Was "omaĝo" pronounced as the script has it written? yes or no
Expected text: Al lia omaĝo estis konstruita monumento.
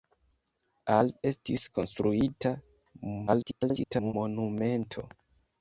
no